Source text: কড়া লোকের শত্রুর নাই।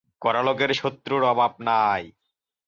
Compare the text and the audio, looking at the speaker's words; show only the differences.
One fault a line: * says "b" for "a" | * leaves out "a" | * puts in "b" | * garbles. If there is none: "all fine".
* puts in "অভাব"